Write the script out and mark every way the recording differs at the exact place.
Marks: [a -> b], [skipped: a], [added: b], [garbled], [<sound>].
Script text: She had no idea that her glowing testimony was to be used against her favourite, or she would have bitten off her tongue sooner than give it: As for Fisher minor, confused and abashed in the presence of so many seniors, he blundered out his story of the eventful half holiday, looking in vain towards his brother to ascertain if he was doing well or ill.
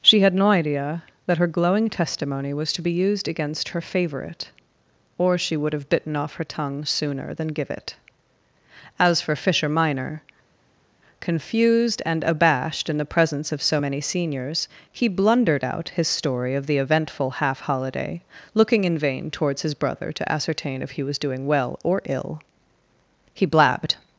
She had no idea that her glowing testimony was to be used against her favourite, or she would have bitten off her tongue sooner than give it: As for Fisher minor, confused and abashed in the presence of so many seniors, he blundered out his story of the eventful half holiday, looking in vain towards his brother to ascertain if he was doing well or ill. [added: He blabbed]